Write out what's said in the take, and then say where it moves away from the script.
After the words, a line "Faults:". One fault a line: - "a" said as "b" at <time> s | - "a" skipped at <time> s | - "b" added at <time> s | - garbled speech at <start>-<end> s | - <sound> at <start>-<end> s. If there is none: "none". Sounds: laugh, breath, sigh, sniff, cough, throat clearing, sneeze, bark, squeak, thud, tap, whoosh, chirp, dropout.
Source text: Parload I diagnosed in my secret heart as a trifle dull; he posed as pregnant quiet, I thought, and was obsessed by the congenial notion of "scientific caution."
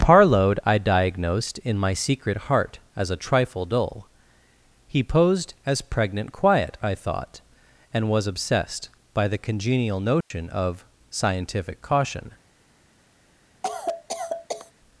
Parload I diagnosed in my secret heart as a trifle dull; he posed as pregnant quiet, I thought, and was obsessed by the congenial notion of "scientific caution."
Faults:
- dropout at 10.2-10.3 s
- cough at 13.6-14.7 s